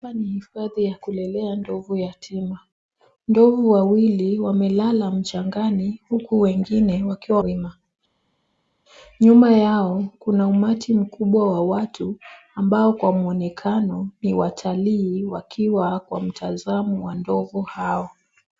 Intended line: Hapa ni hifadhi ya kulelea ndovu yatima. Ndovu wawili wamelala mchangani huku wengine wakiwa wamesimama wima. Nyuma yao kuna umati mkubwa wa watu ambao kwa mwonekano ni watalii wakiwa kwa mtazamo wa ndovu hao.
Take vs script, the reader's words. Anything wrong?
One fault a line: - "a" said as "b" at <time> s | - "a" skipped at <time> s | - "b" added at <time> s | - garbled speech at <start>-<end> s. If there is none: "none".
- "wamesimama" skipped at 7.4 s